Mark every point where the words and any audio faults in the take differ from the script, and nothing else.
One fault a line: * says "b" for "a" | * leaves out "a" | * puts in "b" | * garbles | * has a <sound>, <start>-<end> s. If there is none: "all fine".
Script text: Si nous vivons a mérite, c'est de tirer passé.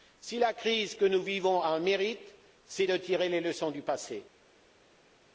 * puts in "la crise que"
* puts in "un"
* puts in "les leçons du"